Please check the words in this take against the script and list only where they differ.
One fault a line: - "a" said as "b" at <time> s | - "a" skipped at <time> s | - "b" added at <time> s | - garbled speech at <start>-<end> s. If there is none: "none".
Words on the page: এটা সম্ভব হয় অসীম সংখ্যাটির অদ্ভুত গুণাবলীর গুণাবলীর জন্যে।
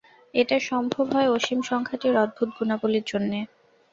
- "গুণাবলীর" skipped at 3.0 s